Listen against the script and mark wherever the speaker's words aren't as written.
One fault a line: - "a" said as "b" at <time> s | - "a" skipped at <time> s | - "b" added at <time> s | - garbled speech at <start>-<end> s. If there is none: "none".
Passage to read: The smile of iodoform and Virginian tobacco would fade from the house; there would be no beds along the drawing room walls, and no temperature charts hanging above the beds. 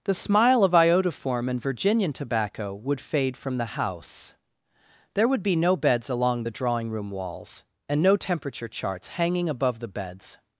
none